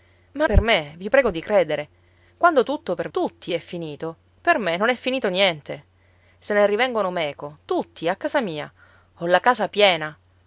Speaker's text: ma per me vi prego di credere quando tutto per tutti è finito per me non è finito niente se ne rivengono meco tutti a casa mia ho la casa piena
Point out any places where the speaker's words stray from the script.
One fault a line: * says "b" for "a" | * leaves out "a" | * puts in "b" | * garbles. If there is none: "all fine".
all fine